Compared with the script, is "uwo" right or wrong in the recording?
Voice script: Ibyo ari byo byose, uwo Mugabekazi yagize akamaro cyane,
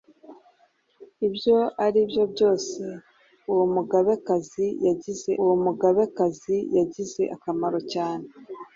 right